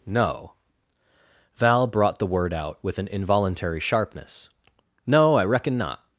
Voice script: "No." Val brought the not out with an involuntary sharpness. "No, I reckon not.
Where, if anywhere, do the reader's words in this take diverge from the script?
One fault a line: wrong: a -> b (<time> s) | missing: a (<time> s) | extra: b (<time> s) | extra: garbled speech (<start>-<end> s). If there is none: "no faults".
wrong: not -> word (2.2 s)